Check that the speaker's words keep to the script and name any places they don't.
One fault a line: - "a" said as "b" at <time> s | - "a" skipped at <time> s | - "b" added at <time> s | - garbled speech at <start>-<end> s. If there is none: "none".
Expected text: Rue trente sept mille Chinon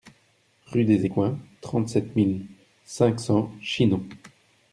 - "des Écoins" added at 0.8 s
- "cinq cents" added at 2.8 s